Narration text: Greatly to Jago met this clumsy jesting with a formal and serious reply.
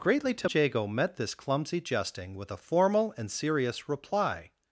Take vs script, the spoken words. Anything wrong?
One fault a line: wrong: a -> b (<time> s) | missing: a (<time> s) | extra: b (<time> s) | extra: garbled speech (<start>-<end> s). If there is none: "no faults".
no faults